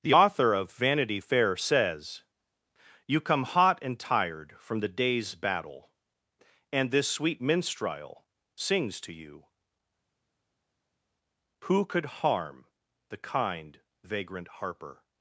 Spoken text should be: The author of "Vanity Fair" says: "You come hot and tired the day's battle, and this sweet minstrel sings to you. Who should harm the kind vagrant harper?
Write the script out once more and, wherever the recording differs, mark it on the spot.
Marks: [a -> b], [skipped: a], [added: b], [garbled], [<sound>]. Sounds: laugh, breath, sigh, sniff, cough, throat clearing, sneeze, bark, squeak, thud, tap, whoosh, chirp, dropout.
The author of "Vanity Fair" says: "You come hot and tired [added: from] the day's battle, and this sweet minstrel sings to you. Who [should -> could] harm the kind vagrant harper?